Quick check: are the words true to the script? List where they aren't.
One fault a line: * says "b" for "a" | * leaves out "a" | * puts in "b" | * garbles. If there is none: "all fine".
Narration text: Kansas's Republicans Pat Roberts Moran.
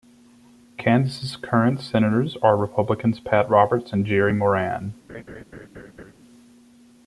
* puts in "current senators are"
* puts in "and Jerry"